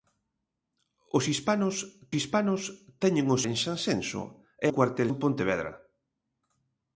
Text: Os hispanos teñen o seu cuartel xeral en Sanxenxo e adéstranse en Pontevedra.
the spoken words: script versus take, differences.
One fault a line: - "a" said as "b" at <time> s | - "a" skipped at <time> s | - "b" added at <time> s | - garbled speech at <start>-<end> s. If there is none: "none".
- "hispanos" added at 2.2 s
- "seu cuartel xeral" skipped at 3.4 s
- "adéstranse" said as "cuartel" at 4.7 s